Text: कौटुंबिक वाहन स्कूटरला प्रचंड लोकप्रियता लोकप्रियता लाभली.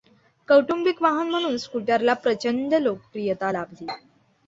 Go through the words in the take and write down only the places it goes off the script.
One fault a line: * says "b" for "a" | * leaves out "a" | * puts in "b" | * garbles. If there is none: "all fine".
* puts in "म्हणून"
* leaves out "लोकप्रियता"